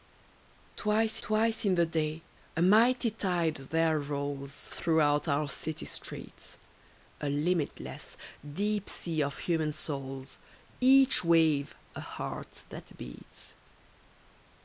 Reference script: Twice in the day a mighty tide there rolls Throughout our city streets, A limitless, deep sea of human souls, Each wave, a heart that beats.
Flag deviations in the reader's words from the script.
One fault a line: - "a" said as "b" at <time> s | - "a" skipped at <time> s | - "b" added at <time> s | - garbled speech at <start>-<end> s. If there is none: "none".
- "twice" added at 1.2 s